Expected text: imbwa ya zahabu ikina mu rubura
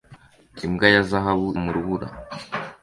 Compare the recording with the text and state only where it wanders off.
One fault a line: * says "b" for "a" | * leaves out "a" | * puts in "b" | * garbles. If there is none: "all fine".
* leaves out "ikina"